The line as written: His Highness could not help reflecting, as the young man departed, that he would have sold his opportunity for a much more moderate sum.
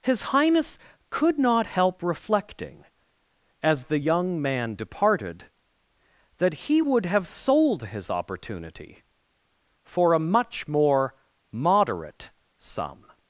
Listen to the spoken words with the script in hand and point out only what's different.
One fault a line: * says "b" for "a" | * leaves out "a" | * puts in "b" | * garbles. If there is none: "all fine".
all fine